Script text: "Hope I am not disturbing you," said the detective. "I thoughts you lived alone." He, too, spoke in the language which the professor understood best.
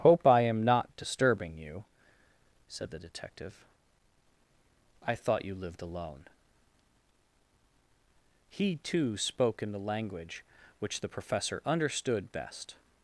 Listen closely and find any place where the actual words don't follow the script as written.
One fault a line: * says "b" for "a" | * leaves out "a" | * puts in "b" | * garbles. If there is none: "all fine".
* says "thought" for "thoughts"